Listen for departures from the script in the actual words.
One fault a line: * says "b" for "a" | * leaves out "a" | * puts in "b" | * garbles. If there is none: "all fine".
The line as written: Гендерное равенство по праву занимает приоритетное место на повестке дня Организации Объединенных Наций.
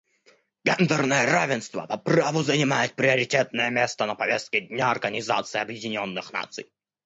all fine